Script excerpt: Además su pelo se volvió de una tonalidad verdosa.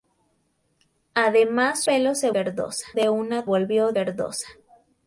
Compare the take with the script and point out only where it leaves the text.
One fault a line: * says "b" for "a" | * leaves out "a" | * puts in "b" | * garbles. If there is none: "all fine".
* leaves out "su"
* says "verdosa" for "volvió"
* says "volvió" for "tonalidad"